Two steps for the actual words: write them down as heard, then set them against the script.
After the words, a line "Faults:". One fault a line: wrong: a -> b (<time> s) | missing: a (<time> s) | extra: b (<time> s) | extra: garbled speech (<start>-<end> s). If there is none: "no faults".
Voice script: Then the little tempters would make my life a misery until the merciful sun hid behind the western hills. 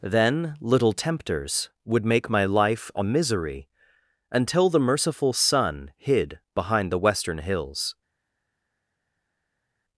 Then little tempters would make my life a misery until the merciful sun hid behind the western hills.
Faults:
missing: the (0.6 s)